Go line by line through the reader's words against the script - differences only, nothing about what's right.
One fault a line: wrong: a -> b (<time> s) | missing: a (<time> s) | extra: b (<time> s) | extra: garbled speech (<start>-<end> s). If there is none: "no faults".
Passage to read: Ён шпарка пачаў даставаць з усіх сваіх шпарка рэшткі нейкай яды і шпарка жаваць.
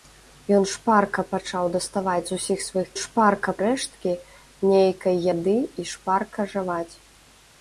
no faults